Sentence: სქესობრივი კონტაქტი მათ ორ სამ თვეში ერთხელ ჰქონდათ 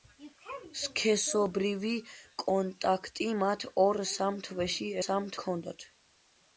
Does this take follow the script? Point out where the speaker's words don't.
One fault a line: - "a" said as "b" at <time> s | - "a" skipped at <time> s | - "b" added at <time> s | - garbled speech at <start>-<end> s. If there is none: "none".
- "ერთხელ" said as "სამ" at 5.1 s